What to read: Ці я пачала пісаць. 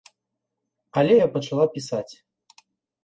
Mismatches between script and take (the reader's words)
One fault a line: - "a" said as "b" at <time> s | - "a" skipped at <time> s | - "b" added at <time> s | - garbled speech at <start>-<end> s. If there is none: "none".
- "Ці" said as "Але" at 1.0 s